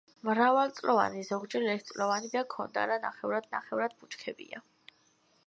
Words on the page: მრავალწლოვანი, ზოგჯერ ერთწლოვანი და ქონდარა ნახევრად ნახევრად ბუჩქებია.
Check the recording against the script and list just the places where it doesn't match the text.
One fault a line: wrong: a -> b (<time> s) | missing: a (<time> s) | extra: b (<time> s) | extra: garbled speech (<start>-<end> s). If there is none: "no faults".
no faults